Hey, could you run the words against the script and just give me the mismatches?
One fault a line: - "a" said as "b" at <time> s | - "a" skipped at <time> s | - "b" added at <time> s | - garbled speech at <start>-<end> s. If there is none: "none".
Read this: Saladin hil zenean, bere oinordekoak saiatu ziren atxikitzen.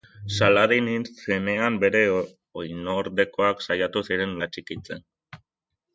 none